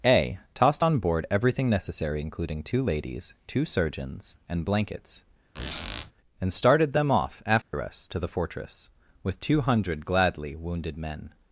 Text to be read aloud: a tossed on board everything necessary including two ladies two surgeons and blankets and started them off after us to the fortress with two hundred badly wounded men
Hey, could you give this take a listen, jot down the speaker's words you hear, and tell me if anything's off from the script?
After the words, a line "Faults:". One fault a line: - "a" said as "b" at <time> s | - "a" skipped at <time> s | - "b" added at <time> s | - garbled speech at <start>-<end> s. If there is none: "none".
a tossed on board everything necessary including two ladies two surgeons and blankets and started them off after us to the fortress with two hundred gladly wounded men
Faults:
- "badly" said as "gladly" at 10.0 s